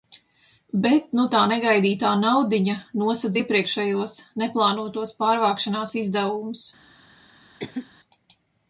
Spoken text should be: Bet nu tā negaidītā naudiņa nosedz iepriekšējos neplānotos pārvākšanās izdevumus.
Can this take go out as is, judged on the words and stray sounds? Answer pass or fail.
fail